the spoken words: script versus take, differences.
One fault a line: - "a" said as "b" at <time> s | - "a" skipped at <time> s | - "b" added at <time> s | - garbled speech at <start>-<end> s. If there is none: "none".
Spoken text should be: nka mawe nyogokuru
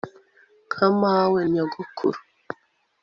none